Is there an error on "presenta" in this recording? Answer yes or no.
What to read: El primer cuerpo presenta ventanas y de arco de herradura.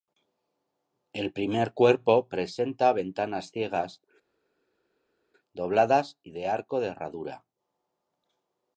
no